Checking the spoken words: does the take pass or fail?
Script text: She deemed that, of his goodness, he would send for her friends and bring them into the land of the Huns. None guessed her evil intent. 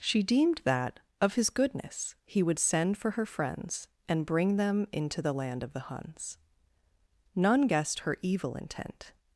pass